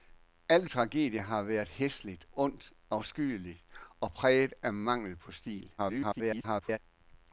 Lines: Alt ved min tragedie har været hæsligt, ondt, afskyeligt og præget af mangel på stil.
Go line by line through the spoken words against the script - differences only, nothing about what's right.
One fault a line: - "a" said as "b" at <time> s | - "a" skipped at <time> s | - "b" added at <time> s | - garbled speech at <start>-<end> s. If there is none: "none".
- "ved min" skipped at 0.7 s
- garbled speech at 5.8-6.8 s